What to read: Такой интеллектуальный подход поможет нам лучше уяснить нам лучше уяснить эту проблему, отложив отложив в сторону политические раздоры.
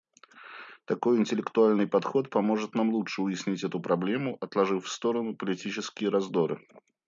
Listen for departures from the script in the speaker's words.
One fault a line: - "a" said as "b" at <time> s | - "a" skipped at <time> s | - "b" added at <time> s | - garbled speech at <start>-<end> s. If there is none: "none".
- "нам лучше уяснить" skipped at 3.6 s
- "отложив" skipped at 4.8 s